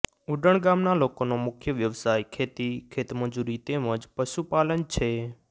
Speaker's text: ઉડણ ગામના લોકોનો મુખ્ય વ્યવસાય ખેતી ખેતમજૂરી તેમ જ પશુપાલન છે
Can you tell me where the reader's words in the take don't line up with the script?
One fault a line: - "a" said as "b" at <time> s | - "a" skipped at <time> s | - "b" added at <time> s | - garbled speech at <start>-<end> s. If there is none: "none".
none